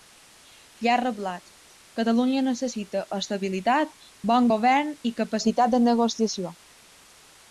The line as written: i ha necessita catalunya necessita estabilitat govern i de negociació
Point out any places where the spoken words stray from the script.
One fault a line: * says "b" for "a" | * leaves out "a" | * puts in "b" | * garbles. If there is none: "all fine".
* says "reblat" for "necessita"
* puts in "bon"
* puts in "capacitat"